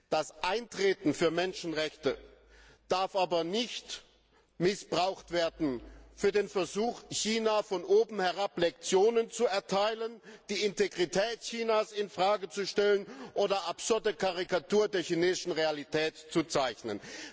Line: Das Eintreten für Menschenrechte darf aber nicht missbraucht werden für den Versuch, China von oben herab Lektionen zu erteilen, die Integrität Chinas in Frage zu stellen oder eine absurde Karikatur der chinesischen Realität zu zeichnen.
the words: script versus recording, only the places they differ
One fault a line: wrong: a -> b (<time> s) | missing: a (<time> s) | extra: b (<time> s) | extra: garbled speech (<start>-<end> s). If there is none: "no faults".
missing: eine (13.7 s)